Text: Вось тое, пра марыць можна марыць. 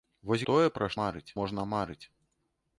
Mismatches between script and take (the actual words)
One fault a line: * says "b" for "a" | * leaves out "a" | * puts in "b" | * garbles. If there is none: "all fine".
all fine